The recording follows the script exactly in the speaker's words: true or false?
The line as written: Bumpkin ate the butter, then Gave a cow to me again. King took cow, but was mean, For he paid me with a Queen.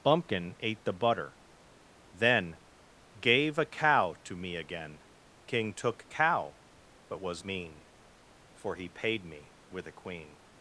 true